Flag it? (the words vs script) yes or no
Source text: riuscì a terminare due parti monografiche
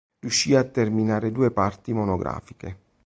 no